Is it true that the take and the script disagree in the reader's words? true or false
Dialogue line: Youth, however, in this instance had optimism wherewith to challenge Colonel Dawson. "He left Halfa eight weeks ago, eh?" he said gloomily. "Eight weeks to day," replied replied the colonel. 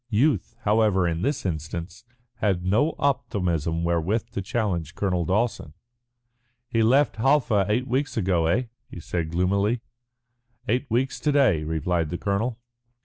true